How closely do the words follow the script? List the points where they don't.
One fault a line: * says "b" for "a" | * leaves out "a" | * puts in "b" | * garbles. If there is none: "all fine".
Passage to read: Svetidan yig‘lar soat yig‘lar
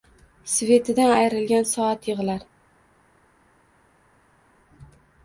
* says "ayrilgan" for "yig‘lar"